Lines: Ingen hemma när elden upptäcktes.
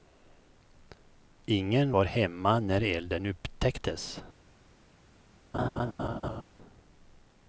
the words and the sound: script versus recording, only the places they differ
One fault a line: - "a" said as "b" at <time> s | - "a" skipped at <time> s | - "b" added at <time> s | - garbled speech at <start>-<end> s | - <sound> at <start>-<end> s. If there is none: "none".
- "var" added at 1.9 s
- laugh at 5.5-6.4 s